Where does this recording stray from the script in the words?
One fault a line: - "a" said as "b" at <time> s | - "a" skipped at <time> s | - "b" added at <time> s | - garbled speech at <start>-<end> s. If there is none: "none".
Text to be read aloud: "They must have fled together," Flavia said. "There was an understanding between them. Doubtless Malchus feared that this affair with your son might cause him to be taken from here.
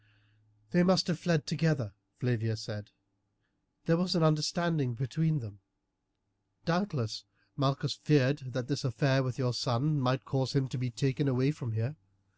- "away" added at 11.3 s